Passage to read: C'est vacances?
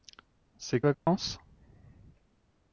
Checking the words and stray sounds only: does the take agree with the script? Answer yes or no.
no